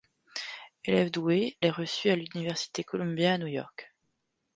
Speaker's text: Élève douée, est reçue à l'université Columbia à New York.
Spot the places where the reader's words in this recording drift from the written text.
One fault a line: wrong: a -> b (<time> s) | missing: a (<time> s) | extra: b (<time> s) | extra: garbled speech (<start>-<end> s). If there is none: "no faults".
no faults